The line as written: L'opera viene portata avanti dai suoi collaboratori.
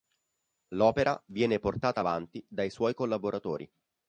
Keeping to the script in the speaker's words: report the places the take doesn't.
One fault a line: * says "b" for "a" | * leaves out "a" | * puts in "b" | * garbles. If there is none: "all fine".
all fine